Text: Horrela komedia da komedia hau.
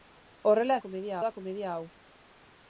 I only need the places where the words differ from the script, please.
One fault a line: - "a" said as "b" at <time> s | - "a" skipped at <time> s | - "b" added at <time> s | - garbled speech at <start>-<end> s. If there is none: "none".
none